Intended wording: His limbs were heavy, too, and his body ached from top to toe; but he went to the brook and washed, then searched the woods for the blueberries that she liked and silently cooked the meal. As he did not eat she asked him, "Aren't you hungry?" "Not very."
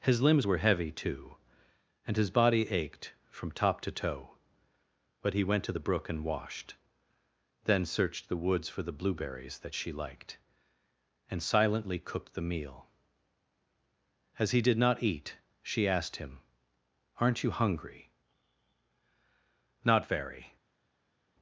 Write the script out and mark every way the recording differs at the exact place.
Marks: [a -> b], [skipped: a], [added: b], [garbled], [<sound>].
His limbs were heavy, too, and his body ached from top to toe; but he went to the brook and washed, then searched the woods for the blueberries that she liked and silently cooked the meal. As he did not eat she asked him, "Aren't you hungry?" "Not very."